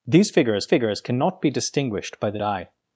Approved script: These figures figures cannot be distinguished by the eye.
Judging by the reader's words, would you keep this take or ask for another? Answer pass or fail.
pass